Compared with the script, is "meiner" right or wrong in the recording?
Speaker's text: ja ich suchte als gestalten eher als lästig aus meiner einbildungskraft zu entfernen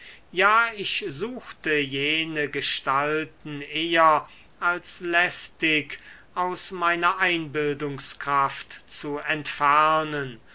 right